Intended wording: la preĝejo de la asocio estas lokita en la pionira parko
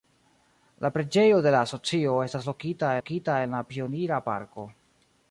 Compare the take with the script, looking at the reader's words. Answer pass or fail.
fail